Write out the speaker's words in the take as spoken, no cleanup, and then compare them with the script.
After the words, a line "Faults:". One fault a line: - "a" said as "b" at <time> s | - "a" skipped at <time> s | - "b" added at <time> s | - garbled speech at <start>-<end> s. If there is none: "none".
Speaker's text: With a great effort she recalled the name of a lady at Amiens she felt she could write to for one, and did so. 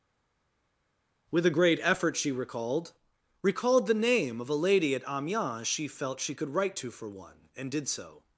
With a great effort she recalled recalled the name of a lady at Amiens she felt she could write to for one, and did so.
Faults:
- "recalled" added at 3.4 s